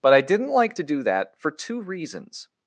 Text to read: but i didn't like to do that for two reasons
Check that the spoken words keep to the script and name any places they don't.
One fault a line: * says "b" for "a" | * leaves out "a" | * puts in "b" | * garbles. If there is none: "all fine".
all fine